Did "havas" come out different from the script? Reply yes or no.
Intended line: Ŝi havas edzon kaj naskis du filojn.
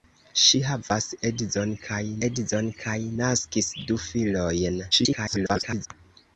no